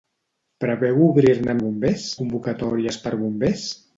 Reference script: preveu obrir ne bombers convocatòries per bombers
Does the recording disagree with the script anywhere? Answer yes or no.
no